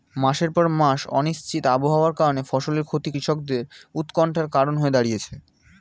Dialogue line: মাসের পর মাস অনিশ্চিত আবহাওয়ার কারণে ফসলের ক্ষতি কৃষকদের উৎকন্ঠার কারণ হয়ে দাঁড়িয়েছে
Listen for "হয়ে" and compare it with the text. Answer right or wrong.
right